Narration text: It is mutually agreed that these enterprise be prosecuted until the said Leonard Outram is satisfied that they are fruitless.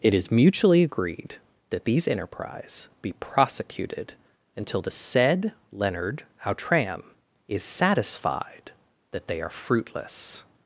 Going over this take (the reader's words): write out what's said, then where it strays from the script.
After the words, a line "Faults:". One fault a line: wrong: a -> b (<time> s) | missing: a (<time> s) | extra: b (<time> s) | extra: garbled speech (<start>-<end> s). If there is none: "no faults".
It is mutually agreed that these enterprise be prosecuted until the said Leonard Outram is satisfied that they are fruitless.
Faults:
no faults